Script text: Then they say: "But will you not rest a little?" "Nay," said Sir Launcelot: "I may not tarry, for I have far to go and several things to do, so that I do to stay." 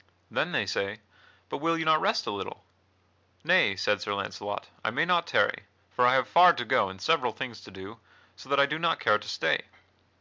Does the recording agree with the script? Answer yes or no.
no